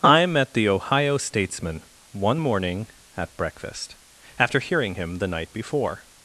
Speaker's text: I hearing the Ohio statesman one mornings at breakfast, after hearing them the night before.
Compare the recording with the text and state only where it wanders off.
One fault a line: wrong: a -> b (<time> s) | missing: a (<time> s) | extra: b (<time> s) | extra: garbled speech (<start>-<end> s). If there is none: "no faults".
wrong: hearing -> met (0.2 s)
wrong: mornings -> morning (2.4 s)
wrong: them -> him (4.9 s)